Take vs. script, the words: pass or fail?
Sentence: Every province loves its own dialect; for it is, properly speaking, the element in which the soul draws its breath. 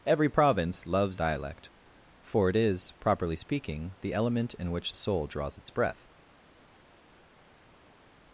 fail